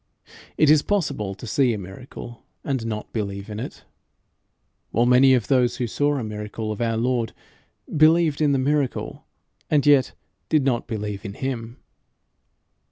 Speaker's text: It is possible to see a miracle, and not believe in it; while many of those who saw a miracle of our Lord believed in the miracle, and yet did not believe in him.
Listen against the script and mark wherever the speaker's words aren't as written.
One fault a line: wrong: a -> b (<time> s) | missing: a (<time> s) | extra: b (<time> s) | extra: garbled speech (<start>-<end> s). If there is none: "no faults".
no faults